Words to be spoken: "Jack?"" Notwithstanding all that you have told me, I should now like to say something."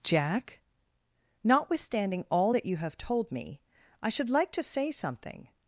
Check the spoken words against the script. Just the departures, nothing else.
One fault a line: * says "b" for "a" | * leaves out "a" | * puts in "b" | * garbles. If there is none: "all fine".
* leaves out "now"